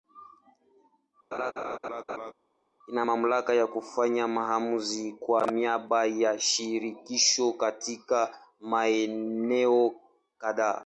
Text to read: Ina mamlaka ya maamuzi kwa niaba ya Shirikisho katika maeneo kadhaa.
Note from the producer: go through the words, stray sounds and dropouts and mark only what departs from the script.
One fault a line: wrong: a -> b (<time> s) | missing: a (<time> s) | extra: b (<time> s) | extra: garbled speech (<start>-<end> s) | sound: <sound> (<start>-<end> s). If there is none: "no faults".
sound: laugh (1.3-2.3 s)
extra: kufanya (3.7 s)